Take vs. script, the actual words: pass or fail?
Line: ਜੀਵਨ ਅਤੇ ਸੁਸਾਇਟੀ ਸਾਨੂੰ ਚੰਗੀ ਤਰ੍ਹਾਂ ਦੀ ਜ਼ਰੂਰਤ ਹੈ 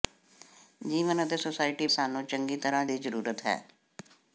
pass